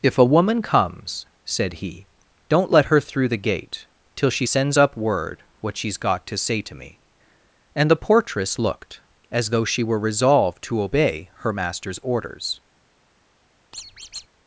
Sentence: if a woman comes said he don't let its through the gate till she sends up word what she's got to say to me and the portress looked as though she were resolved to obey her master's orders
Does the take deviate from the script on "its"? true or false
true